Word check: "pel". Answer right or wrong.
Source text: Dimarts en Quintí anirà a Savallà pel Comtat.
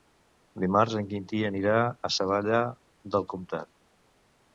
wrong